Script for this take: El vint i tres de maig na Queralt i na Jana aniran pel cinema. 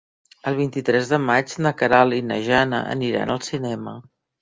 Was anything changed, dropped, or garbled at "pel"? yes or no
yes